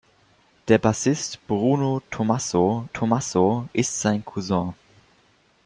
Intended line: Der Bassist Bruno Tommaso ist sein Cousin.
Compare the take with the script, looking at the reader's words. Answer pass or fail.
fail